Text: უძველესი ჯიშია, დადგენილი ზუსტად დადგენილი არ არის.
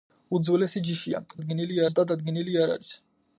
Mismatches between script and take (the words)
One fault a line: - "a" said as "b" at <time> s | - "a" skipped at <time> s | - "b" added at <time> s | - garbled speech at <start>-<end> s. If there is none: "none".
none